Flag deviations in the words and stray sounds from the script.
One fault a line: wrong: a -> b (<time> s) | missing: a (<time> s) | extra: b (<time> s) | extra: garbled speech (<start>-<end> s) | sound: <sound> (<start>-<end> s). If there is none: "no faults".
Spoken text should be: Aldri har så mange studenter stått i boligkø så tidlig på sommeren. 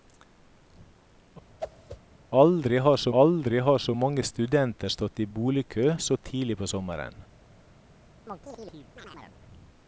sound: whoosh (1.6-2.0 s)
extra: aldri har så (3.2 s)
sound: chirp (8.3-9.4 s)